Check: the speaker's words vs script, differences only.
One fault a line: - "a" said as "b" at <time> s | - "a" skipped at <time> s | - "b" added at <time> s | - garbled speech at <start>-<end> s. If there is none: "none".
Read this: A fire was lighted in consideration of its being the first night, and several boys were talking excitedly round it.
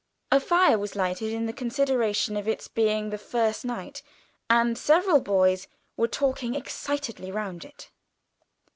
none